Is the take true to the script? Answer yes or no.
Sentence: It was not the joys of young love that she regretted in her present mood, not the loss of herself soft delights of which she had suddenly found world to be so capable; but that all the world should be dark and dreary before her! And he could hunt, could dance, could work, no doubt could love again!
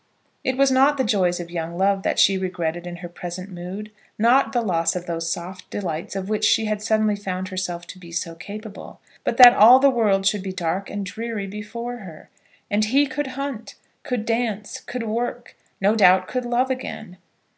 no